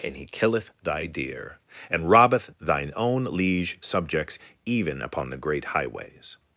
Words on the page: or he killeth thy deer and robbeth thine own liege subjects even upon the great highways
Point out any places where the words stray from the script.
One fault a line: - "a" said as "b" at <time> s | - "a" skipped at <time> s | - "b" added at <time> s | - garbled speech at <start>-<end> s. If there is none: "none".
- "or" said as "and" at 0.0 s